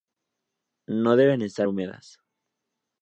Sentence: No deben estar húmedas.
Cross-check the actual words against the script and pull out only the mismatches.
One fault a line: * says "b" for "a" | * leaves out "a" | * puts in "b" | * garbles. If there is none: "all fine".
all fine